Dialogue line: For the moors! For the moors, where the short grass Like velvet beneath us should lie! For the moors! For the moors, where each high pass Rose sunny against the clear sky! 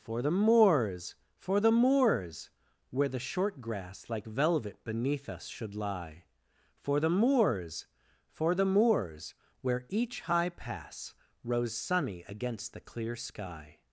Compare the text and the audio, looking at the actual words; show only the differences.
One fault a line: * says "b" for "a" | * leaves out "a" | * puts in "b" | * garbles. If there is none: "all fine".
all fine